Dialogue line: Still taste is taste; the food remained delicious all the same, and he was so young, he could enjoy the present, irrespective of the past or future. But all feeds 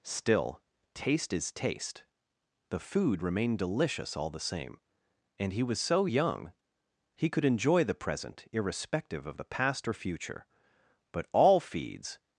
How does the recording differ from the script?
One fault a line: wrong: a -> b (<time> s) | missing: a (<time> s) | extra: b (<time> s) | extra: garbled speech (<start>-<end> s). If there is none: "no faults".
no faults